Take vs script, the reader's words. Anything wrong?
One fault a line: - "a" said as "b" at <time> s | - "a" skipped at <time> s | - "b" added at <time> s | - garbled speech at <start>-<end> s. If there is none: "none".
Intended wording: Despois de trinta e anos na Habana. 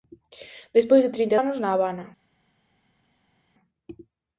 none